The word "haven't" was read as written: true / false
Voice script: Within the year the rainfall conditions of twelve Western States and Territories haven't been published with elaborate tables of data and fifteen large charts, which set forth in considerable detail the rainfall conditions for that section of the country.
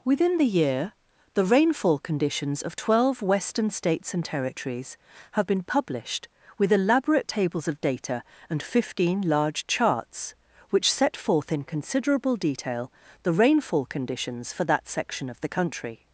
false